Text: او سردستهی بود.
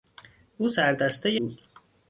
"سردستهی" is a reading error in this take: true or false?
false